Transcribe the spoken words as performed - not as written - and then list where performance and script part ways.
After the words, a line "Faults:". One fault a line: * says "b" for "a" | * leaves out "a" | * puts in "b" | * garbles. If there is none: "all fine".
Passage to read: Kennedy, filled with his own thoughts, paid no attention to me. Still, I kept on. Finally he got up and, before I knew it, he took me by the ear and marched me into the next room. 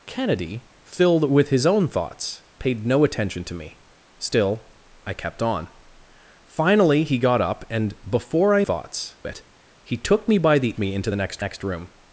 Kennedy, filled with his own thoughts, paid no attention to me. Still, I kept on. Finally he got up and, before I thoughts it, he took me by the me into the next next room.
Faults:
* says "thoughts" for "knew"
* leaves out "ear and marched"
* puts in "next"